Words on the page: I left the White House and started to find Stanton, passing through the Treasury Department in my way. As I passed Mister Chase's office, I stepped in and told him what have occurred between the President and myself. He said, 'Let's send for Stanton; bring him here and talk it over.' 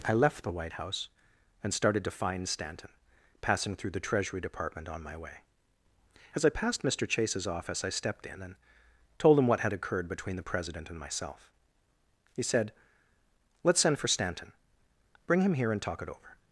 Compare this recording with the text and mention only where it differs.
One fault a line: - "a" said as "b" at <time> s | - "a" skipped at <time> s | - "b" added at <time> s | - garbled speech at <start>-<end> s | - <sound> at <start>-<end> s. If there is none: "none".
- "in" said as "on" at 4.9 s
- "have" said as "had" at 9.6 s